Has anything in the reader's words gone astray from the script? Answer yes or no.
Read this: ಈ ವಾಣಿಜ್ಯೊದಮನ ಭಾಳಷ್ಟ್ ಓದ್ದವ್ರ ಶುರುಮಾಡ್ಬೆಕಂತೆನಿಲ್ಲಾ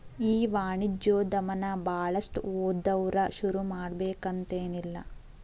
no